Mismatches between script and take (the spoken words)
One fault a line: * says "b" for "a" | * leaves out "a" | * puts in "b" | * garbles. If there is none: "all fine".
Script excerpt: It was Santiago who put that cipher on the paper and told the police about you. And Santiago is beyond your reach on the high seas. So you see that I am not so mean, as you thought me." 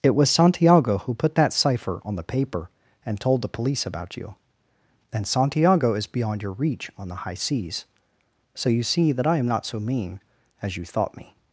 all fine